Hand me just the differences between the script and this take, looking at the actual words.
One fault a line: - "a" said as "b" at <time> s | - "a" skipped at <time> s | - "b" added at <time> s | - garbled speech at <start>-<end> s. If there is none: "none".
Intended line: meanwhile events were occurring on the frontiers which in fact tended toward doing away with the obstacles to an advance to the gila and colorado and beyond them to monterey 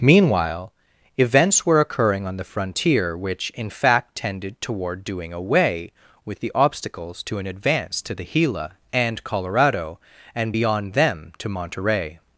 - "frontiers" said as "frontier" at 2.5 s